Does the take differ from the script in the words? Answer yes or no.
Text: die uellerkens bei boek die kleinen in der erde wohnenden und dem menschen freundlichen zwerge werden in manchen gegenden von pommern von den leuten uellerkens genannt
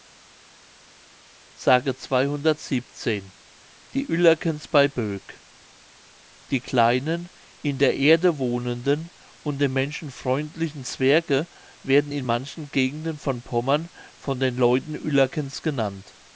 no